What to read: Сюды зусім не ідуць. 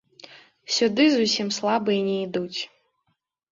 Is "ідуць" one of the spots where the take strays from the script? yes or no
no